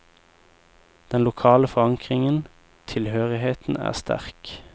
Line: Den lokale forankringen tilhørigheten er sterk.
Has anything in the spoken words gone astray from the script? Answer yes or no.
no